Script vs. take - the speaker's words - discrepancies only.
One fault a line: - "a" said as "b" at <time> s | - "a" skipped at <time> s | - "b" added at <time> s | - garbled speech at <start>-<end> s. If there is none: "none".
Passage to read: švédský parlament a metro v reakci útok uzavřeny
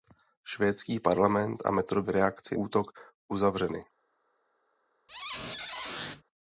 none